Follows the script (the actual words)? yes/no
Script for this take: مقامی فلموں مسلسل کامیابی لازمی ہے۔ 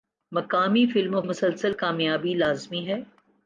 yes